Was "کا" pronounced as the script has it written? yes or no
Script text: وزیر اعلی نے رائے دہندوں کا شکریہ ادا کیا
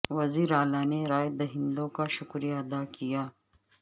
yes